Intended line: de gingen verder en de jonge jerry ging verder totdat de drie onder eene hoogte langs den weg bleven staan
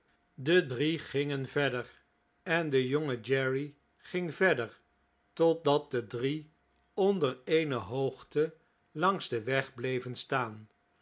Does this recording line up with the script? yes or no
no